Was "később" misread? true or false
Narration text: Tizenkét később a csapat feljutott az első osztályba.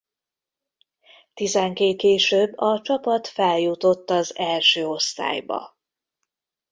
false